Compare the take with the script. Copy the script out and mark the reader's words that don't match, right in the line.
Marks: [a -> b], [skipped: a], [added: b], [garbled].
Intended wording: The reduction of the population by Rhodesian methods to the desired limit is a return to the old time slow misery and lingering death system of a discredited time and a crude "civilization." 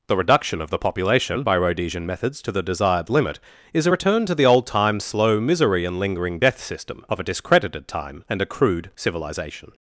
The reduction of the population by Rhodesian methods to the desired limit is a return to the old time slow misery and lingering death system of a discredited time and a crude "civilization."